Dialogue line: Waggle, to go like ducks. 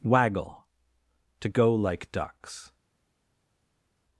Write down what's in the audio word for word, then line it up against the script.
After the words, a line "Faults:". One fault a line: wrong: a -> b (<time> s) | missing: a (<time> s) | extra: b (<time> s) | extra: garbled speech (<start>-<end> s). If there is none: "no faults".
Waggle, to go like ducks.
Faults:
no faults